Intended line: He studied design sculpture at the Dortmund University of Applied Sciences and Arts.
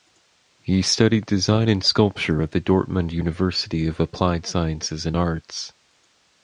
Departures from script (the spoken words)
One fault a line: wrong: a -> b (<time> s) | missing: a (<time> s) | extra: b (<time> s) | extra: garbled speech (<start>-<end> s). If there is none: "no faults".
extra: and (1.7 s)